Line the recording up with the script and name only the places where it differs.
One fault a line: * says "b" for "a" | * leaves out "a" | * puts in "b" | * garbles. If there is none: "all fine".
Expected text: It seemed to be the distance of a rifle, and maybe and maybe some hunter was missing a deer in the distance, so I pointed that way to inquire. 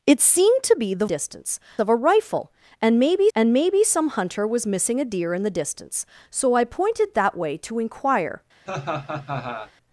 all fine